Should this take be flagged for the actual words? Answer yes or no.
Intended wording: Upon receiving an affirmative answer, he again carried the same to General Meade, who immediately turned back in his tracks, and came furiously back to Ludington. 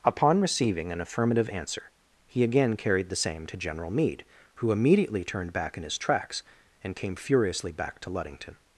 no